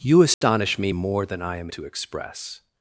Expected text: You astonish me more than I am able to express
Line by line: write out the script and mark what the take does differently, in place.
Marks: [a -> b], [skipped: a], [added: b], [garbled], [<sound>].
You astonish [dropout] me more than I am [skipped: able] to express